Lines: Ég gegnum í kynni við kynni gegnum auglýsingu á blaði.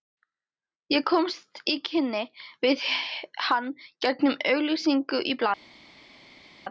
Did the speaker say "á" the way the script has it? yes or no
no